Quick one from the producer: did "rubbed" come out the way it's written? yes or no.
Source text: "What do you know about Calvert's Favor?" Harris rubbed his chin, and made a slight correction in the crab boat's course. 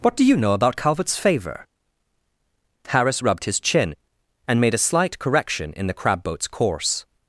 yes